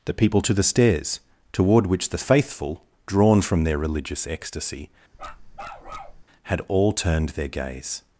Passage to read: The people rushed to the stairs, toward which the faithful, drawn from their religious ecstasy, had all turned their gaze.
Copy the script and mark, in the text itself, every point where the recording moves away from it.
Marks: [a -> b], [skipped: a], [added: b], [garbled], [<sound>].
The people [skipped: rushed] to the stairs, toward which the faithful, drawn from their religious ecstasy, [bark] had all turned their gaze.